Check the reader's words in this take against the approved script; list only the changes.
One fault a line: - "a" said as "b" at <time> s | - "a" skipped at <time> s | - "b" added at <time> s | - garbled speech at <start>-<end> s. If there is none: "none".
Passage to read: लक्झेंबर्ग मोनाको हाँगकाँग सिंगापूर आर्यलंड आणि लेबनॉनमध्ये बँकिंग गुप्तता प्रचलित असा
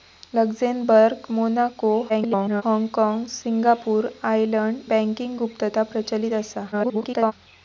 - garbled speech at 2.1-2.6 s
- "आणि लेबनॉनमध्ये" skipped at 4.8 s
- garbled speech at 6.7-7.3 s